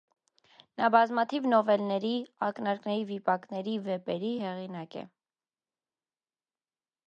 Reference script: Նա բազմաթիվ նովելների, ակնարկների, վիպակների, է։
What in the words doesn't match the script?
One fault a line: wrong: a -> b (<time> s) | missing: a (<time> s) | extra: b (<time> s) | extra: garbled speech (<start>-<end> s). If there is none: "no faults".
extra: վեպերի հեղինակ (3.9 s)